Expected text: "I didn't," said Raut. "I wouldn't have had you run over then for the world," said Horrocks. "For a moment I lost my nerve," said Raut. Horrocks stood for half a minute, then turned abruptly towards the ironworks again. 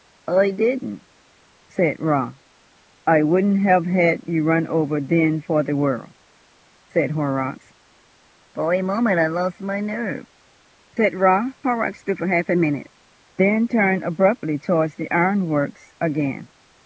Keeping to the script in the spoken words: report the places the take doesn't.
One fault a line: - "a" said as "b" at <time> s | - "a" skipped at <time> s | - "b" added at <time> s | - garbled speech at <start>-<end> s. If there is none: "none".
none